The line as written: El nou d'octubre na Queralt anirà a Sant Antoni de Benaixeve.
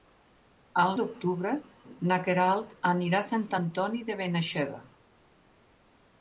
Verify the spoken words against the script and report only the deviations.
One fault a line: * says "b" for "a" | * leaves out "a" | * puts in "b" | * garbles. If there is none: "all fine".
* leaves out "nou"